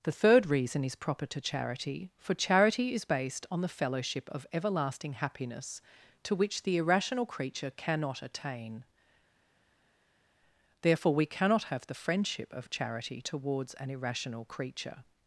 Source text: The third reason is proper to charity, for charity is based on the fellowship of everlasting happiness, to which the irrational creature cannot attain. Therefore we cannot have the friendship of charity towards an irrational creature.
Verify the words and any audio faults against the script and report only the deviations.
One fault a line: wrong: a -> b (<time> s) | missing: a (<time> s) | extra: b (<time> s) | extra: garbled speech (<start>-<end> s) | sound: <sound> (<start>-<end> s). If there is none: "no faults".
no faults